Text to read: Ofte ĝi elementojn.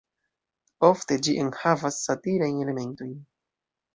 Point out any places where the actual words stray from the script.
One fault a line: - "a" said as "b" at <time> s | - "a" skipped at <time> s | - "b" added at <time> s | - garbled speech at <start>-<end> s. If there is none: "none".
- "enhavas satirajn" added at 1.4 s